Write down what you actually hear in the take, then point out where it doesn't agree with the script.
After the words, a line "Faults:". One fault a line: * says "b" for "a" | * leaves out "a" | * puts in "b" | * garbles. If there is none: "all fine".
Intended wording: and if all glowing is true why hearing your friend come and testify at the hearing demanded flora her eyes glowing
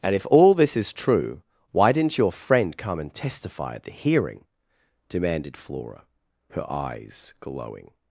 and if all this is true why didn't your friend come and testify at the hearing demanded flora her eyes glowing
Faults:
* says "this" for "glowing"
* says "didn't" for "hearing"